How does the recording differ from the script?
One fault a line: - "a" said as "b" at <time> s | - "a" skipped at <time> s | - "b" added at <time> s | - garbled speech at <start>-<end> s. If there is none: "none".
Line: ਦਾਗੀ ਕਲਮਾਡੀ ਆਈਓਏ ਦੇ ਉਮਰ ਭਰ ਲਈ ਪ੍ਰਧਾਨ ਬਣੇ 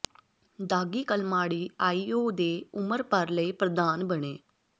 none